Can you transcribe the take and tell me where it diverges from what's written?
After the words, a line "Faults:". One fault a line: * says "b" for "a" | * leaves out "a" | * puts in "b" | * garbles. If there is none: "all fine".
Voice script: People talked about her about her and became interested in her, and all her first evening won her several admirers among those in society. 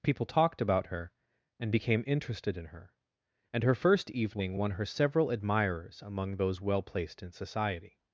People talked about her and became interested in her, and her first evening won her several admirers among those well placed in society.
Faults:
* leaves out "about her"
* leaves out "all"
* puts in "well placed"